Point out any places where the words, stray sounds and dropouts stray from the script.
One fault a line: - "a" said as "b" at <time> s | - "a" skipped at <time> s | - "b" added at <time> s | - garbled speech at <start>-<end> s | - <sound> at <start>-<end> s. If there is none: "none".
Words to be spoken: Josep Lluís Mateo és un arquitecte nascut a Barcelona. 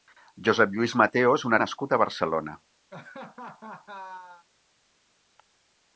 - "arquitecte" skipped at 1.6 s
- laugh at 2.9-4.5 s